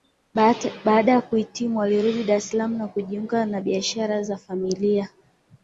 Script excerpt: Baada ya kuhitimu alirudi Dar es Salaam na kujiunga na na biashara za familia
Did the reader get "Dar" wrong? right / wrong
right